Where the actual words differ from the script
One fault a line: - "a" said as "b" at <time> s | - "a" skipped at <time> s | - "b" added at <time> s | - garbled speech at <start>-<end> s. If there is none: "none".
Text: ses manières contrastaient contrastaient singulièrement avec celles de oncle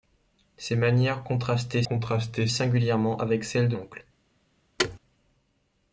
none